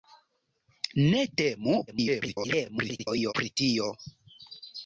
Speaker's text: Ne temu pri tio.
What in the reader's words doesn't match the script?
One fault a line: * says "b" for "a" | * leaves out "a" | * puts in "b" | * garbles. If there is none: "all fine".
* garbles